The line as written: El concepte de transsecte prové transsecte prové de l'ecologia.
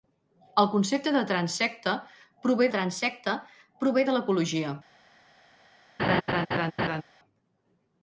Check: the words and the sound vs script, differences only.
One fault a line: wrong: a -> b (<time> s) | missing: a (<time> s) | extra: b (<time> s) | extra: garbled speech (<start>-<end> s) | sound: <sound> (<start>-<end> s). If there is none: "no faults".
sound: laugh (6.0-7.0 s)